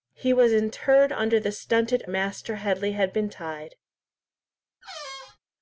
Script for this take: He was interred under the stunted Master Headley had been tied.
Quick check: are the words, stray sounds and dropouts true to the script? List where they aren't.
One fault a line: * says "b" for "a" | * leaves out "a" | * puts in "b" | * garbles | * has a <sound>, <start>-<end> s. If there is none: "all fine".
* has a squeak, 4.8-5.4 s